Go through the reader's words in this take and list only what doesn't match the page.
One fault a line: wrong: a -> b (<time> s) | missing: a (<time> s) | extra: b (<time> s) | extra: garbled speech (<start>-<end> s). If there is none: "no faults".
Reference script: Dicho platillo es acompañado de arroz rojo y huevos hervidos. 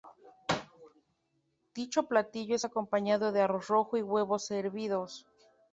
no faults